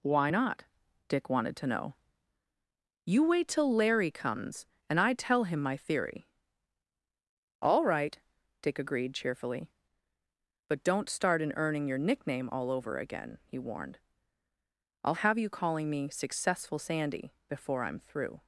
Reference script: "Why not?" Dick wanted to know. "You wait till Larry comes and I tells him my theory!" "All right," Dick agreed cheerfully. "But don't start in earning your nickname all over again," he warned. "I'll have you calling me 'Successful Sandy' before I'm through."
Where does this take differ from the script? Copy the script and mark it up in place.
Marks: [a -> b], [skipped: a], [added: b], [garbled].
"Why not?" Dick wanted to know. "You wait till Larry comes and I [tells -> tell] him my theory!" "All right," Dick agreed cheerfully. "But don't start in earning your nickname all over again," he warned. "I'll have you calling me 'Successful Sandy' before I'm through."